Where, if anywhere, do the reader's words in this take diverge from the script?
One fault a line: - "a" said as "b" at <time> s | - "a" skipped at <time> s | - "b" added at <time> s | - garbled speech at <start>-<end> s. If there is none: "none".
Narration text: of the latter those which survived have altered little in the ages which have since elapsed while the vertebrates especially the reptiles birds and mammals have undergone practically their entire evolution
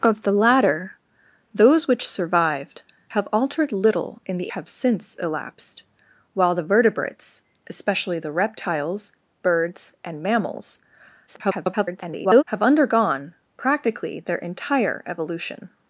- "ages which" skipped at 4.5 s
- garbled speech at 11.3-12.4 s